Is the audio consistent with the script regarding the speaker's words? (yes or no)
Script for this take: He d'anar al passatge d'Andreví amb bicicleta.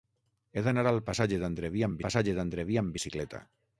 no